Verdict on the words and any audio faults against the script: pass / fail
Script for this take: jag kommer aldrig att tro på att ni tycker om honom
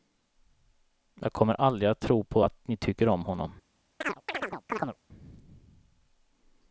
fail